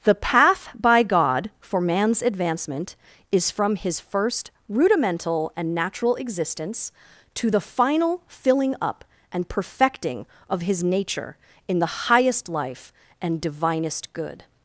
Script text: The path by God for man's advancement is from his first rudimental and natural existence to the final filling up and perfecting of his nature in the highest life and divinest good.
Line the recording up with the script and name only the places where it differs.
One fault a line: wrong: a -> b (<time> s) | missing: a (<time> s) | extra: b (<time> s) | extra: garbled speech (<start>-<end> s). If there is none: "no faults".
no faults